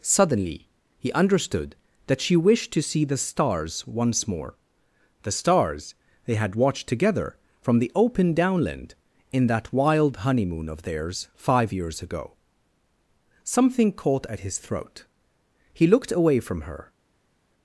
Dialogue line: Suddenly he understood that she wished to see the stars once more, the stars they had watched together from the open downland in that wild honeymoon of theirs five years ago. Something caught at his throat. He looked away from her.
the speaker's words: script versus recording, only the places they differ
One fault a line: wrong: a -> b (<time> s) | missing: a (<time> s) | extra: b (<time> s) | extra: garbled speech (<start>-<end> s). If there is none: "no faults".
no faults